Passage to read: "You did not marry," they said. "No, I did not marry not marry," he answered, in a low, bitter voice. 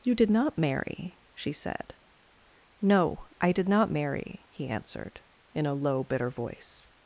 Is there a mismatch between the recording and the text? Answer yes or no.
yes